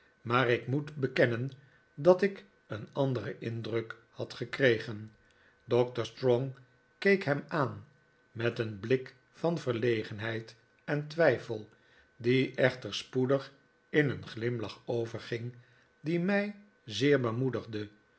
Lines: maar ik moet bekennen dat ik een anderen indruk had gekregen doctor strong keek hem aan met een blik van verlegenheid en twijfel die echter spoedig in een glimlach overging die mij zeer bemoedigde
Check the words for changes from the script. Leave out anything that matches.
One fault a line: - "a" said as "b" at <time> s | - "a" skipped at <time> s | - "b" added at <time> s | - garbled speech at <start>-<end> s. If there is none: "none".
none